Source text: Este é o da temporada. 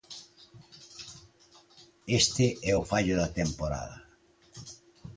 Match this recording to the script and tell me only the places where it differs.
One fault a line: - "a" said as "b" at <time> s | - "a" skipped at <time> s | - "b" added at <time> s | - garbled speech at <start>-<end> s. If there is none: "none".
- "fallo" added at 2.9 s